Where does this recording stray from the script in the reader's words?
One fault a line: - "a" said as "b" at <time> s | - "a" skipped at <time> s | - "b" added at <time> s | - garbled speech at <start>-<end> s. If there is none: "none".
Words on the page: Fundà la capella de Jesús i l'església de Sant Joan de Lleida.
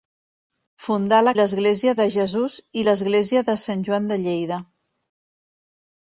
- "capella" said as "l'església" at 1.4 s